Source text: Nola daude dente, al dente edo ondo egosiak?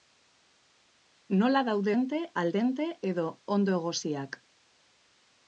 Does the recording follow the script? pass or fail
pass